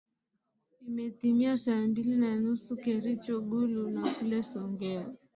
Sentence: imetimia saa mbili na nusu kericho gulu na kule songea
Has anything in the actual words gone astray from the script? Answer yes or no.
no